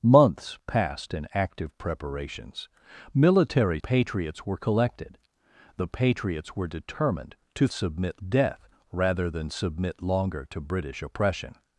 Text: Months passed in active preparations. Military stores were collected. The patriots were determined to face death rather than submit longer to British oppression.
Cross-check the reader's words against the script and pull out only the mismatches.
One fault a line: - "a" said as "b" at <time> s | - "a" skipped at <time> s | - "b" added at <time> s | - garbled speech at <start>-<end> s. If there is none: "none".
- "stores" said as "patriots" at 3.8 s
- "face" said as "submit" at 7.7 s